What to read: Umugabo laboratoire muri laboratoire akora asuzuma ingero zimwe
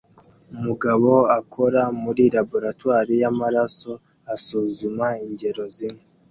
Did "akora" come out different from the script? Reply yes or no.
yes